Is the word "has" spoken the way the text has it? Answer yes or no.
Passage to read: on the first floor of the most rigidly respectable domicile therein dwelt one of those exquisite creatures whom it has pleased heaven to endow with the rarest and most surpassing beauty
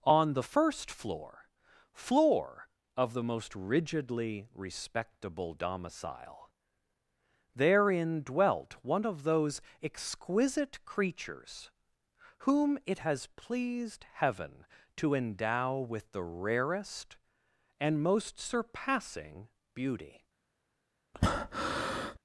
yes